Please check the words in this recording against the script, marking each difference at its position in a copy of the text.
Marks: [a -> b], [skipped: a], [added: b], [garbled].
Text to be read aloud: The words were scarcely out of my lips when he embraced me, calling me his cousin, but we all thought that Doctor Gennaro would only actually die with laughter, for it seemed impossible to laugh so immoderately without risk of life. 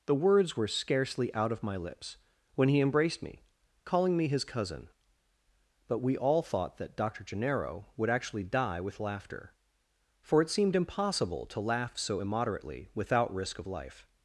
The words were scarcely out of my lips when he embraced me, calling me his cousin, but we all thought that Doctor Gennaro would [skipped: only] actually die with laughter, for it seemed impossible to laugh so immoderately without risk of life.